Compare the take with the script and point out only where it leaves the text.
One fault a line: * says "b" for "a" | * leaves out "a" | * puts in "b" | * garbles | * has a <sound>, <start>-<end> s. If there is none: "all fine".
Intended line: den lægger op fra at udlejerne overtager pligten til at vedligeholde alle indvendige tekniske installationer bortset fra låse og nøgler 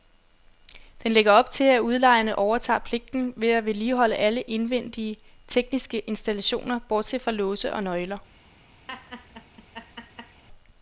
* says "til" for "fra"
* has a laugh, 8.9-10.4 s